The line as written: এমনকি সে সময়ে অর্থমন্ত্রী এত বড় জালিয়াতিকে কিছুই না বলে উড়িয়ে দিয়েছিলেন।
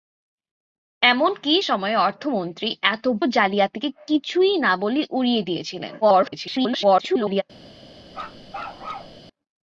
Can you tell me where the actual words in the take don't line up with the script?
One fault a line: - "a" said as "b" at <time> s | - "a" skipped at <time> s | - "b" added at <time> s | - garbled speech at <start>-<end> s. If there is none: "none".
- "সে" skipped at 1.5 s
- "বড়" skipped at 3.0 s
- garbled speech at 6.0-7.4 s